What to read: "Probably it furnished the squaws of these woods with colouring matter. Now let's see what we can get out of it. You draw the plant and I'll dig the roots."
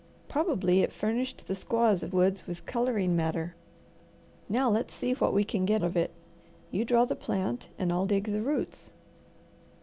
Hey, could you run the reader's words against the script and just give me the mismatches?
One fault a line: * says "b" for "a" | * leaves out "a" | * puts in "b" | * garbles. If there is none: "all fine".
* leaves out "these"
* leaves out "out"